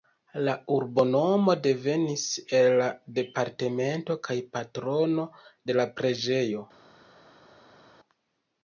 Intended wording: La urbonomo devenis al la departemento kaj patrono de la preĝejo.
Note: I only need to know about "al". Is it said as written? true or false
false